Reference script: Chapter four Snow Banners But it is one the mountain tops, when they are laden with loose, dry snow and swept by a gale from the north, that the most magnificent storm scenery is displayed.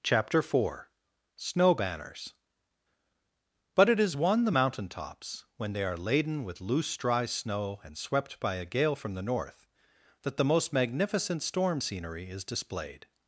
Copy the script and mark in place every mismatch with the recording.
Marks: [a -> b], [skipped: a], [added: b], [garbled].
Chapter four Snow Banners But it is one the mountain tops, when they are laden with loose, dry snow and swept by a gale from the north, that the most magnificent storm scenery is displayed.